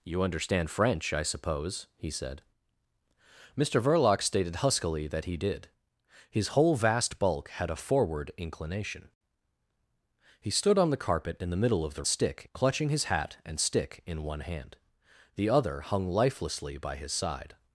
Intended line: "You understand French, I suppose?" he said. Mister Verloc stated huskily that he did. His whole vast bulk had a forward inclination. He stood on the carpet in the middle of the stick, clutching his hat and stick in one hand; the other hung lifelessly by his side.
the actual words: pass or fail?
pass